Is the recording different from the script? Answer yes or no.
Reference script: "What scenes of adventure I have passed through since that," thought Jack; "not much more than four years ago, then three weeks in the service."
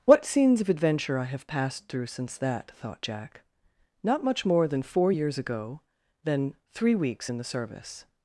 no